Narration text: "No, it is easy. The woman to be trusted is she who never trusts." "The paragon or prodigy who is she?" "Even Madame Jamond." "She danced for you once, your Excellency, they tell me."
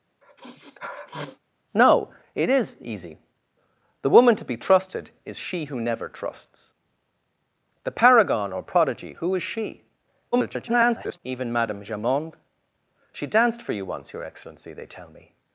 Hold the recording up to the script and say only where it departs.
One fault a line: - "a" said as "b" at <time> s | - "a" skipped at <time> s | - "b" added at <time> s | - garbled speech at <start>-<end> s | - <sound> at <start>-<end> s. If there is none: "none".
- sniff at 0.2-1.4 s
- garbled speech at 10.3-11.2 s